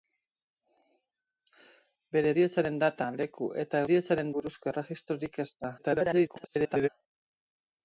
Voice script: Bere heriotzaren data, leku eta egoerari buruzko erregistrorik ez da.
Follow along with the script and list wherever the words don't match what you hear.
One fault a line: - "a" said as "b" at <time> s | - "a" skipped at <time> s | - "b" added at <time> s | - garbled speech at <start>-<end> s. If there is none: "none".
- "egoerari" said as "heriotzaren" at 3.9 s
- garbled speech at 5.8-6.9 s